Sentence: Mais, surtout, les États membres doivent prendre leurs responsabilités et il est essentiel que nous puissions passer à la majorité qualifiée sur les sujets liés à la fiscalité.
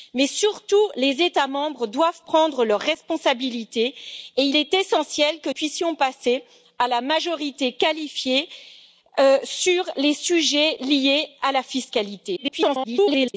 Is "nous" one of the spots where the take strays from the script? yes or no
yes